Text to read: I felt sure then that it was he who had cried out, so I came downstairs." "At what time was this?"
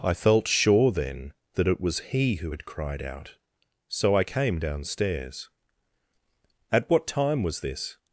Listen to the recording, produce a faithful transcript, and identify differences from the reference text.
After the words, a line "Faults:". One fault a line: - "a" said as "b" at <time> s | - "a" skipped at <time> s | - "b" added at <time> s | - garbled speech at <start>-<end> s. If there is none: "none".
I felt sure then that it was he who had cried out, so I came downstairs." "At what time was this?"
Faults:
none